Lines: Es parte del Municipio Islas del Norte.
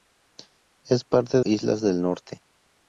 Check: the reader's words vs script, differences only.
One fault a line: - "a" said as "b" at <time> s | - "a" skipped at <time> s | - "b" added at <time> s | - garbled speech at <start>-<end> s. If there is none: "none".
- "del Municipio" skipped at 1.4 s